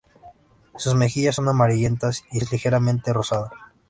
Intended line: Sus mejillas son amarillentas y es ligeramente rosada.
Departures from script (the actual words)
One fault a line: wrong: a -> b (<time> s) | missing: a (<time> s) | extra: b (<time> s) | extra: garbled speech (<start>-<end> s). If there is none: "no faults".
no faults